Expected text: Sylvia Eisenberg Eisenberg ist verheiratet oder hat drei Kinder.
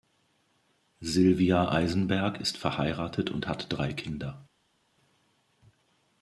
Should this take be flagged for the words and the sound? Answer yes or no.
yes